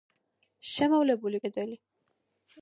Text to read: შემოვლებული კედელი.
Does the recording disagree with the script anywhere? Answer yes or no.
no